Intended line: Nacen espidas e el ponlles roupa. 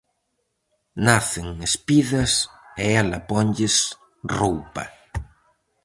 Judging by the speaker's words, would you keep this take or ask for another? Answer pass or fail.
fail